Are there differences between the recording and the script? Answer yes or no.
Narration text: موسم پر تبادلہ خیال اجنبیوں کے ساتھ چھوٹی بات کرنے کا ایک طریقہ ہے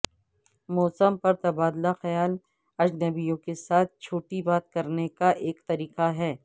no